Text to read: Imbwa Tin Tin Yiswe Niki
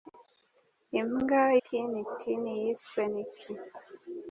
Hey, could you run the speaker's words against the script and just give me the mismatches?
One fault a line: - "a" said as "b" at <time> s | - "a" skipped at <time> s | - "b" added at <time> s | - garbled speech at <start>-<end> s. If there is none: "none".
none